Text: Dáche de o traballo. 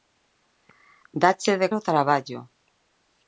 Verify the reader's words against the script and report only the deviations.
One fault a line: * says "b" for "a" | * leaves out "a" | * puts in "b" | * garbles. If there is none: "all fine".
all fine